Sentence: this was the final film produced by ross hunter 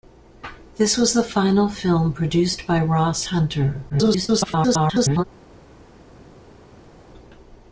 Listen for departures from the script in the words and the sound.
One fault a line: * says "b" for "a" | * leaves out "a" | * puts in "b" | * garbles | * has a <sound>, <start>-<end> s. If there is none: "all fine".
* garbles